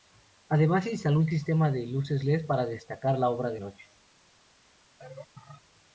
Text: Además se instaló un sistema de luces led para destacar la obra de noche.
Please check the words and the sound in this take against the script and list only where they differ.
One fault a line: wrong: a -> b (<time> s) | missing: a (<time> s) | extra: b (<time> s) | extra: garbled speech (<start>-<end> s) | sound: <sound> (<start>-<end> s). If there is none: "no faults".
sound: laugh (5.0-5.6 s)